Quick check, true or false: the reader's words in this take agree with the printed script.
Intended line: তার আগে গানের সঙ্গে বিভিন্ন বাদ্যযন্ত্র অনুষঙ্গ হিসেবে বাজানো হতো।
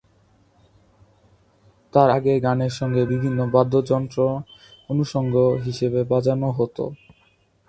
true